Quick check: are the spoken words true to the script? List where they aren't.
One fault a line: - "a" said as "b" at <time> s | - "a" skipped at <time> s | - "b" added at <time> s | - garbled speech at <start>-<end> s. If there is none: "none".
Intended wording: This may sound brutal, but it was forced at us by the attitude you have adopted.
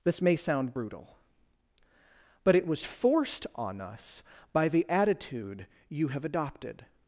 - "at" said as "on" at 3.5 s